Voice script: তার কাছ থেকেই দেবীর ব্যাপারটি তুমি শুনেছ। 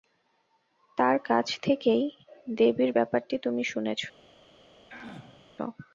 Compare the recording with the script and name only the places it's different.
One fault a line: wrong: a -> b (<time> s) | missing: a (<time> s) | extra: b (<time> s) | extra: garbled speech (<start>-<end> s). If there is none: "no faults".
no faults